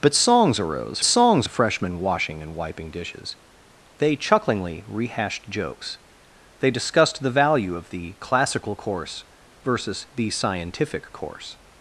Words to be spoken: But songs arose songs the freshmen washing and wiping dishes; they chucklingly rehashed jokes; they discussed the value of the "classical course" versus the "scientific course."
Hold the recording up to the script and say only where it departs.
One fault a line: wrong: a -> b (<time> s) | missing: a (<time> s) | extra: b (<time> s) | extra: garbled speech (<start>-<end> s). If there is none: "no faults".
no faults